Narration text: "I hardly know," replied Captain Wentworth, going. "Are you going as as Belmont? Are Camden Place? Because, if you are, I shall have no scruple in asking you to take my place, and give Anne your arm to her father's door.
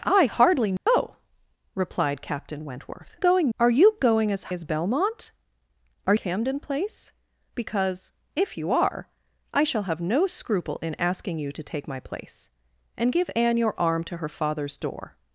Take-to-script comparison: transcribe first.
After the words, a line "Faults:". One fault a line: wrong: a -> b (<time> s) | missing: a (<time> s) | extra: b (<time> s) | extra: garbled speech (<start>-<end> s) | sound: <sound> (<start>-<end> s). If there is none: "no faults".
"I hardly know," replied Captain Wentworth, going. "Are you going as as Belmont? Are Camden Place? Because, if you are, I shall have no scruple in asking you to take my place, and give Anne your arm to her father's door.
Faults:
sound: dropout (0.8-0.9 s)